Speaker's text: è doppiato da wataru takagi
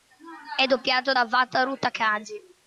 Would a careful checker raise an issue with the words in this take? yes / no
no